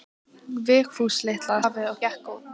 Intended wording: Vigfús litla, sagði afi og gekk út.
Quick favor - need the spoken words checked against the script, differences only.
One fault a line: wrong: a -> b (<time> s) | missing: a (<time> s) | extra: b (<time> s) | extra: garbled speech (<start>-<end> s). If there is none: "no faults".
missing: sagði (1.6 s)